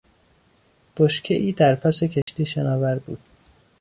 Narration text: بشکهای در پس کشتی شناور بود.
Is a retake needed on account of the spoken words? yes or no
no